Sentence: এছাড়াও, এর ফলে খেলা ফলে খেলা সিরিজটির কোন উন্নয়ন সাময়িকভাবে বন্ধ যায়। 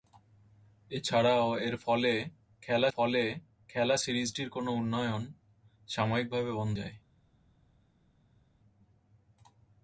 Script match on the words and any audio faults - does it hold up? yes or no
yes